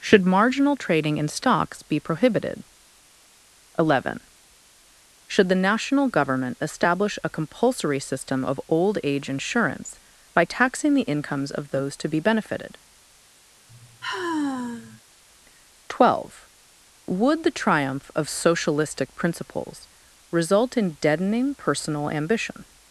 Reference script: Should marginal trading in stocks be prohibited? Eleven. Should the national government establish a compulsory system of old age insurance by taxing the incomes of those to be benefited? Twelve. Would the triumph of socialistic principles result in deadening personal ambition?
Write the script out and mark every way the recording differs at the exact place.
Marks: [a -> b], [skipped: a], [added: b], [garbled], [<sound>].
Should marginal trading in stocks be prohibited? Eleven. Should the national government establish a compulsory system of old age insurance by taxing the incomes of those to be benefited? [sigh] Twelve. Would the triumph of socialistic principles result in deadening personal ambition?